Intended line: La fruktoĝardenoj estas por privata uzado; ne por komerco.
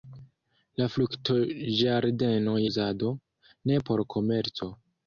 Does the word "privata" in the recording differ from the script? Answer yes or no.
yes